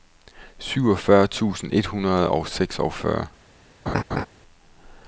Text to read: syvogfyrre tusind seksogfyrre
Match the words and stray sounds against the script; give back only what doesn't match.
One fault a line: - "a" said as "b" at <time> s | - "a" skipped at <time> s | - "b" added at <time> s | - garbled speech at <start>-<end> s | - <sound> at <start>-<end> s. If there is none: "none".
- "et hundrede og" added at 1.7 s
- laugh at 3.9-4.3 s